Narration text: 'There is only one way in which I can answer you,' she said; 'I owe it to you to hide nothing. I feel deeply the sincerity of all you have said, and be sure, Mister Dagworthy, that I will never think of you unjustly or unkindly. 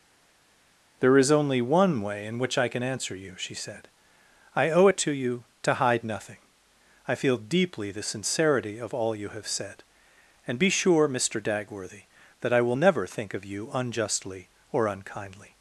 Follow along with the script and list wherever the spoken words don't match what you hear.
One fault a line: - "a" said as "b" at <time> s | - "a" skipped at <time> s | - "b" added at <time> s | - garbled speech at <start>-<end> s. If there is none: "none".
none